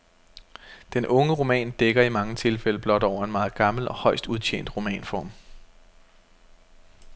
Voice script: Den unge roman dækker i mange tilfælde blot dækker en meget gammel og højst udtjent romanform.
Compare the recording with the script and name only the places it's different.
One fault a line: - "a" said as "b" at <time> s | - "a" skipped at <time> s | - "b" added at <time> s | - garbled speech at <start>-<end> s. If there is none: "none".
- "dækker" said as "over" at 3.0 s